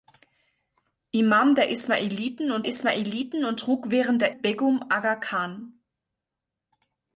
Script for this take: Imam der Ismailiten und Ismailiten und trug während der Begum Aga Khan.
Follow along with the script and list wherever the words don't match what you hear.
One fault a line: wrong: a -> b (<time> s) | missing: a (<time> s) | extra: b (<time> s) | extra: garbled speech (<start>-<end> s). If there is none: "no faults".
no faults